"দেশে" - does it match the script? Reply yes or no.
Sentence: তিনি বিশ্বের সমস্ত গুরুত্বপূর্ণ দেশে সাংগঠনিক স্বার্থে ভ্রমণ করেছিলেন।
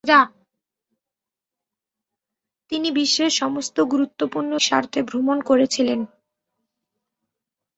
no